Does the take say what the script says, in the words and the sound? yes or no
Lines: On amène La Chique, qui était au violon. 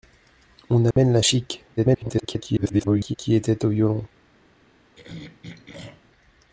no